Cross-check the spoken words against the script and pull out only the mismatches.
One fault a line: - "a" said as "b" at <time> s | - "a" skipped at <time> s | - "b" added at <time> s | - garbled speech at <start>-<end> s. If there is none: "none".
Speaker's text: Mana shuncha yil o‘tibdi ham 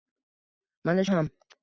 - "shuncha yil o‘tibdi" skipped at 1.0 s